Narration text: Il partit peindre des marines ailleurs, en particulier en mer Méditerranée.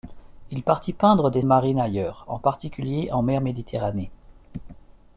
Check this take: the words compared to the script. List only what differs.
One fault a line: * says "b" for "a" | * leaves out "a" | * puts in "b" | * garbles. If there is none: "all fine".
all fine